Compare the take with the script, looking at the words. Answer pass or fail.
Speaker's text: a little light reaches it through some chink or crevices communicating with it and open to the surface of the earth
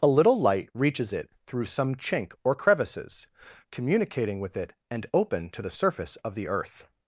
pass